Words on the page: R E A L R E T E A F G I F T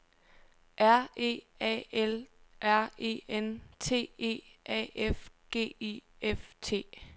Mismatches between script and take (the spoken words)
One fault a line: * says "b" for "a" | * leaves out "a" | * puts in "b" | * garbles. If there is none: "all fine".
* puts in "N"